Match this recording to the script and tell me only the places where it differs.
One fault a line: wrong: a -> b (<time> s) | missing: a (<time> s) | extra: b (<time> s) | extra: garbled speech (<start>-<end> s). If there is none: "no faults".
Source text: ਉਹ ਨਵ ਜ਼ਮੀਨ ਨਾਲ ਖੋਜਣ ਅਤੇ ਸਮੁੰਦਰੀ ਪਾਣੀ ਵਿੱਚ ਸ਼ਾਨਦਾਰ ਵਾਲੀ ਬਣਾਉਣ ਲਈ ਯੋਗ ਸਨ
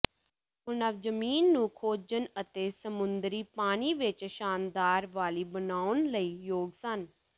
wrong: ਨਾਲ -> ਨੂੰ (1.5 s)